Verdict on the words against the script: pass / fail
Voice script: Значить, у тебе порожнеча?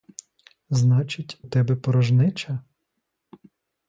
fail